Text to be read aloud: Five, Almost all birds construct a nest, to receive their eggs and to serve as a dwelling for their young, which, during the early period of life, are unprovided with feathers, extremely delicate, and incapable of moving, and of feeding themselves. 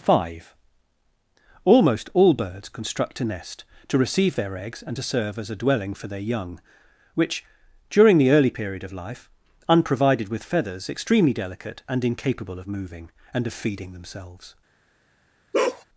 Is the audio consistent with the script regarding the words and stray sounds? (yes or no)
no